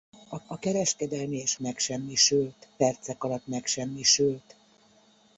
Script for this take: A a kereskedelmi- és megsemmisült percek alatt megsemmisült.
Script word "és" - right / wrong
right